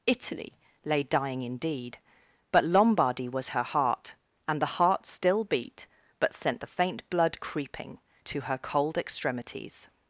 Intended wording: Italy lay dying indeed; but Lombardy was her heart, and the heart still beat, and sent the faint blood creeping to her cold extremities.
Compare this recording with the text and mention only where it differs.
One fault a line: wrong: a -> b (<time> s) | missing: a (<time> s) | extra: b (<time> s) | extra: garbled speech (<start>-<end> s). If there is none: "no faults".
wrong: and -> but (6.2 s)